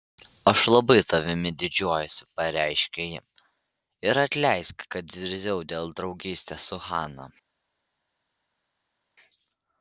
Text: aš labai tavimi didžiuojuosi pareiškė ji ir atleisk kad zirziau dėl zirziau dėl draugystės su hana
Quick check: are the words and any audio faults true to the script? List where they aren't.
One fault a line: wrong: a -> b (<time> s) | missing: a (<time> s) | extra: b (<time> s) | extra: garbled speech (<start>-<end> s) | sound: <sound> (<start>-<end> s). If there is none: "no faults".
missing: zirziau dėl (6.0 s)